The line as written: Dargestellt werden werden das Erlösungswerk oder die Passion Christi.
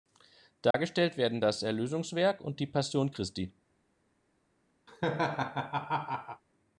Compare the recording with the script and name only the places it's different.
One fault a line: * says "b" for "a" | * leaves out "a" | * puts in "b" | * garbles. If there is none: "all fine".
* leaves out "werden"
* says "und" for "oder"